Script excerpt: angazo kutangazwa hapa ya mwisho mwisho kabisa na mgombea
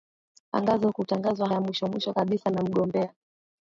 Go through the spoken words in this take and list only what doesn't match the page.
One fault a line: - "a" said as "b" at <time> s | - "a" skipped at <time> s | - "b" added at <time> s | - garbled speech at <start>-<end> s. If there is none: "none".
- "hapa" skipped at 1.5 s